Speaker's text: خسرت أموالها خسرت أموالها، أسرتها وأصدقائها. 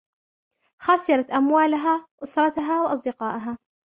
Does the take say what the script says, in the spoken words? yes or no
no